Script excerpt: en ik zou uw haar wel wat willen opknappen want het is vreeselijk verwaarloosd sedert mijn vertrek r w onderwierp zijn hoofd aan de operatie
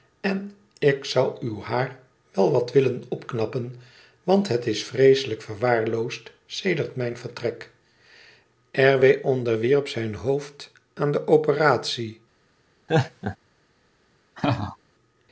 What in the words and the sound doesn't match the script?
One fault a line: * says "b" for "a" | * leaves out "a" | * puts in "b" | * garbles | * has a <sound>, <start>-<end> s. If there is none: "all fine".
* has a laugh, 12.9-13.4 s
* has a laugh, 14.4-14.8 s